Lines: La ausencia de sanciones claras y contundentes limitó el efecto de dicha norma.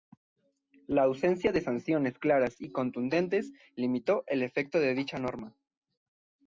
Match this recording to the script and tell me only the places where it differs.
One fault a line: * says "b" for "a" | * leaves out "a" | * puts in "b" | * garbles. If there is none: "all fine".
all fine